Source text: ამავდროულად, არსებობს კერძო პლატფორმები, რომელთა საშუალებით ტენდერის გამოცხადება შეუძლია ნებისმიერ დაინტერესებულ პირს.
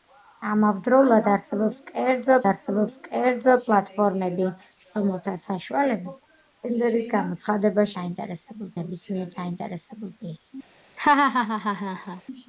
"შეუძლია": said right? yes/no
no